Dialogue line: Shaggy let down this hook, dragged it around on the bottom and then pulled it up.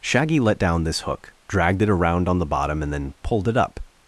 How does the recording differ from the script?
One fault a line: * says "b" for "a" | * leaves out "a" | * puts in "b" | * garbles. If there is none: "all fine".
all fine